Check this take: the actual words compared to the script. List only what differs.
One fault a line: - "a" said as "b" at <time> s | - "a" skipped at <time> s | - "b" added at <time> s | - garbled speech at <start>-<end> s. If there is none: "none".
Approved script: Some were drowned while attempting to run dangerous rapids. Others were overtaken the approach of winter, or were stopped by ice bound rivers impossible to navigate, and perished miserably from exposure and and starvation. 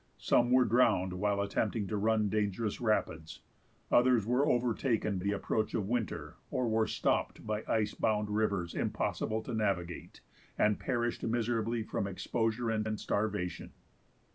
none